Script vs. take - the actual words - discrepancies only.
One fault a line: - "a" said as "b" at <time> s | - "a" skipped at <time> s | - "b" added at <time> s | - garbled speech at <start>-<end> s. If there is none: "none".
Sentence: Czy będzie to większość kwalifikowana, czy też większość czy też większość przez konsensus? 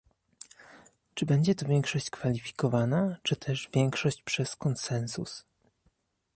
- "czy też większość" skipped at 4.2 s